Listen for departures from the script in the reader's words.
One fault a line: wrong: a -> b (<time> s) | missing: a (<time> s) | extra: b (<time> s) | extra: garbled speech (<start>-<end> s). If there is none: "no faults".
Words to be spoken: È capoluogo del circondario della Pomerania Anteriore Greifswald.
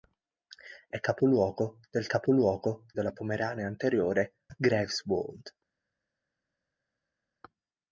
wrong: circondario -> capoluogo (2.0 s)